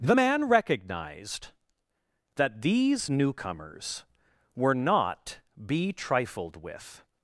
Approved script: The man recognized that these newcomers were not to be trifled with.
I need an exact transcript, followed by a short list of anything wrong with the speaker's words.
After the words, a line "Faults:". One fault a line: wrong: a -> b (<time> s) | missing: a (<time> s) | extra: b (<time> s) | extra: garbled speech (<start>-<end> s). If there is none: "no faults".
The man recognized that these newcomers were not be trifled with.
Faults:
missing: to (5.4 s)